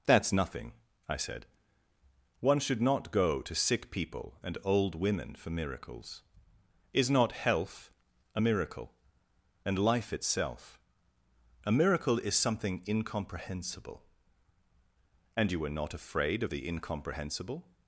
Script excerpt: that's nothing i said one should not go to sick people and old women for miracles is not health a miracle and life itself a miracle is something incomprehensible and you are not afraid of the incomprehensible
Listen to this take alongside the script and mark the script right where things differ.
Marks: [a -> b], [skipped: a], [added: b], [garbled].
that's nothing i said one should not go to sick people and old women for miracles is not health a miracle and life itself a miracle is something incomprehensible and you [are -> were] not afraid of the incomprehensible